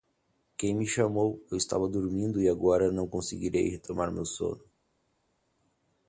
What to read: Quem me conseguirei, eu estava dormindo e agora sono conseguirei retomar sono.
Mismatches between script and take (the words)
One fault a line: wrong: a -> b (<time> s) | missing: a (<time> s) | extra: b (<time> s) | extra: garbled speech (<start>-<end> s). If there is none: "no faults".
wrong: conseguirei -> chamou (0.9 s)
wrong: sono -> não (2.9 s)
extra: meu (4.1 s)